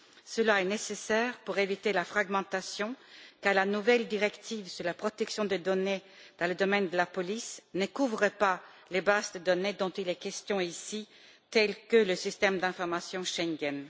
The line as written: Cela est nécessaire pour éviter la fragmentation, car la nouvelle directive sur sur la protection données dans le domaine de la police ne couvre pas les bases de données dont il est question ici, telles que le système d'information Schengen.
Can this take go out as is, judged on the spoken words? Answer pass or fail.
fail